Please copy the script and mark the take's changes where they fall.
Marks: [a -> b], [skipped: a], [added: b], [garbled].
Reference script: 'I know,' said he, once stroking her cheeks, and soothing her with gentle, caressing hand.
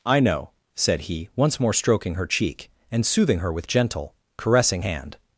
'I know,' said he, once [added: more] stroking her [cheeks, -> cheek] and soothing her with gentle, caressing hand.